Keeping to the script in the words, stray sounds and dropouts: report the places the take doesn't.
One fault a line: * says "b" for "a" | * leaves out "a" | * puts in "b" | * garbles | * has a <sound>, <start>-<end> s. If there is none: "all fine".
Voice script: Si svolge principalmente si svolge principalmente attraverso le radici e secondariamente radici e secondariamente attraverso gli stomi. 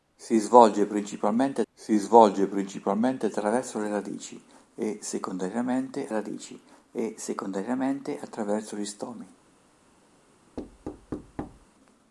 * has a thud, 10.6-11.7 s